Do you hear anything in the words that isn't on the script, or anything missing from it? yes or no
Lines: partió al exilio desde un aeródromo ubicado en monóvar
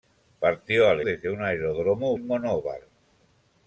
yes